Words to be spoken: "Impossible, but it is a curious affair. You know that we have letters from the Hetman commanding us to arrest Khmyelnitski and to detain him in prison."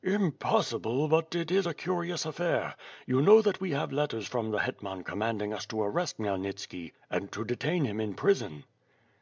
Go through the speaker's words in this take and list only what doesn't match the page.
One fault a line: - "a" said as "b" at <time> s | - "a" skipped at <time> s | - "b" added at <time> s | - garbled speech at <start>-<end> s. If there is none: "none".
none